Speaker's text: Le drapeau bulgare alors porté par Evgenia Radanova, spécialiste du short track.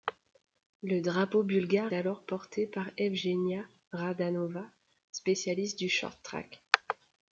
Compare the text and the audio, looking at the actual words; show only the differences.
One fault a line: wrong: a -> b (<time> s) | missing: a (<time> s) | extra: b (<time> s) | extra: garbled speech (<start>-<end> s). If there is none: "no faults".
no faults